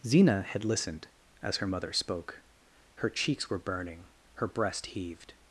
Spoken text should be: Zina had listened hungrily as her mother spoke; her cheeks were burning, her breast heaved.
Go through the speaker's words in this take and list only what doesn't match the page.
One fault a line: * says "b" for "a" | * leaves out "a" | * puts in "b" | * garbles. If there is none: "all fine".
* leaves out "hungrily"